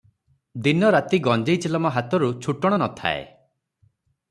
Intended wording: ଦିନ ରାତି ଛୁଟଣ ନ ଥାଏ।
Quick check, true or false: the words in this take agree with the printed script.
false